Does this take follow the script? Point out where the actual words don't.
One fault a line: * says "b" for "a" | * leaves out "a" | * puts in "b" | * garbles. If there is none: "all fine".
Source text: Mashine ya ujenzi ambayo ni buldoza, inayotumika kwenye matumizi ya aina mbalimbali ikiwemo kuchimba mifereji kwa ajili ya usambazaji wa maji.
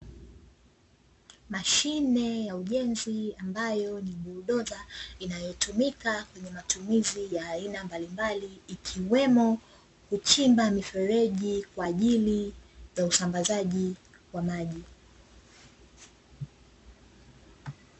all fine